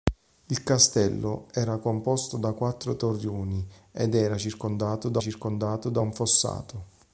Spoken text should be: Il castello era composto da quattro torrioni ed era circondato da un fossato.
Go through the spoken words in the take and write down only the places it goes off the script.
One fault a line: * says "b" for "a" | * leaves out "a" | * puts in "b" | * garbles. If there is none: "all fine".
* puts in "circondato da"